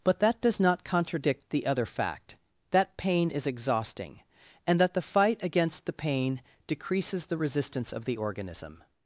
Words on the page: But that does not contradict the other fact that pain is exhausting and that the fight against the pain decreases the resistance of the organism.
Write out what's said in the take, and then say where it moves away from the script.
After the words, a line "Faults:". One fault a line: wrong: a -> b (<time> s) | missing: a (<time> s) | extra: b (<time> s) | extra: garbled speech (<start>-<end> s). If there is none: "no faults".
But that does not contradict the other fact that pain is exhausting and that the fight against the pain decreases the resistance of the organism.
Faults:
no faults